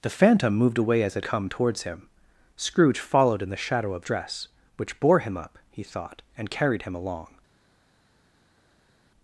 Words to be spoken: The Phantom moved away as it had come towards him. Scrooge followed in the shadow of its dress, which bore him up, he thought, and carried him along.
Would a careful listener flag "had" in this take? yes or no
yes